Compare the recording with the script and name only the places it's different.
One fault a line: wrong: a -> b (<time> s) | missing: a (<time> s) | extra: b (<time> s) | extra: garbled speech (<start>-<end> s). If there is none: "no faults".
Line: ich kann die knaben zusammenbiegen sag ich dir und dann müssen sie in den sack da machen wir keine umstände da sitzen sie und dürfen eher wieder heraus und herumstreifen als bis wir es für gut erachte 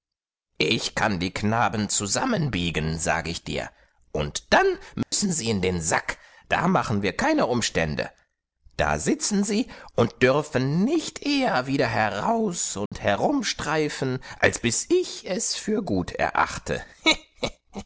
extra: nicht (10.8 s)
wrong: wir -> ich (14.9 s)